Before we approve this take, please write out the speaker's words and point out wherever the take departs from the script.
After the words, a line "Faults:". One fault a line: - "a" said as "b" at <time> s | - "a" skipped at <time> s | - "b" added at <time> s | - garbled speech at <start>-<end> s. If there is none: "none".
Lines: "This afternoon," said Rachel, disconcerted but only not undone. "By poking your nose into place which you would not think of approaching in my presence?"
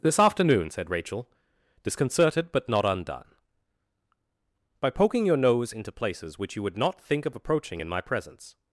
"This afternoon," said Rachel, disconcerted but not undone. "By poking your nose into places which you would not think of approaching in my presence?"
Faults:
- "only" skipped at 2.7 s
- "place" said as "places" at 5.9 s